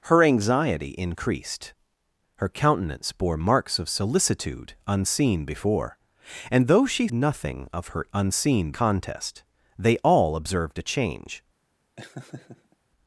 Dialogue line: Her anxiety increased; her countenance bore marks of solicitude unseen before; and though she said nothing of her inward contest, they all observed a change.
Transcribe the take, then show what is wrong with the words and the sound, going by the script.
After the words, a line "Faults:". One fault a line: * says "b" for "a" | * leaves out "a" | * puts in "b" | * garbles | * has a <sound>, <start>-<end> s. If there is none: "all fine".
Her anxiety increased; her countenance bore marks of solicitude unseen before; and though she nothing of her unseen contest, they all observed a change.
Faults:
* leaves out "said"
* says "unseen" for "inward"
* has a laugh, 12.0-12.8 s